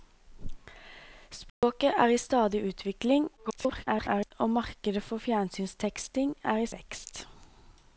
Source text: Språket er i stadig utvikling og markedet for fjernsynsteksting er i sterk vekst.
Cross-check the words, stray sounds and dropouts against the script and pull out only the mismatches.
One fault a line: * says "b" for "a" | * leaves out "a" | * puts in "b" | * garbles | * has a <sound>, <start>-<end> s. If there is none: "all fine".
* has a dropout, 1.5-1.6 s
* garbles
* leaves out "sterk"